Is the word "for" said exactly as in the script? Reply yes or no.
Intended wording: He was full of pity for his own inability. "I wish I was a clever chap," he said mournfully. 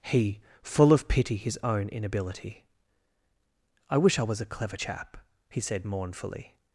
no